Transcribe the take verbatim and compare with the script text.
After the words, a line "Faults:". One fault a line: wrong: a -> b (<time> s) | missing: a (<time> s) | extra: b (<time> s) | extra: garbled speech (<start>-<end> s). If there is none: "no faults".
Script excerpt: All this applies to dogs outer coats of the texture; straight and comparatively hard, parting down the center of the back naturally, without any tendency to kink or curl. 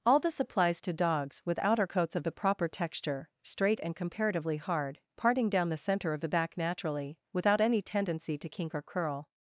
All this applies to dogs with outer coats of the proper texture; straight and comparatively hard, parting down the center of the back naturally, without any tendency to kink or curl.
Faults:
extra: with (1.4 s)
extra: proper (2.3 s)